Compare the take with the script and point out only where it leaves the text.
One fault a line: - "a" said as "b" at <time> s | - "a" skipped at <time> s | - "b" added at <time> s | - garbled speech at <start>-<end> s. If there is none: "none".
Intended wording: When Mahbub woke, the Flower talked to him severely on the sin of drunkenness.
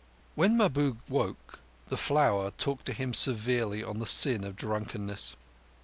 none